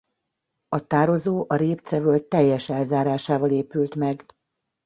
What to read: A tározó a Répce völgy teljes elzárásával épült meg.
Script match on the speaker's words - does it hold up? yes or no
yes